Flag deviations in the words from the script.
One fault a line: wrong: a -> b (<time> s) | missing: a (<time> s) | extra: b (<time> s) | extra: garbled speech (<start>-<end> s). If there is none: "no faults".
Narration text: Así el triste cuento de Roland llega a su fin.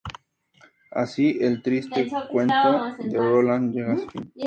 no faults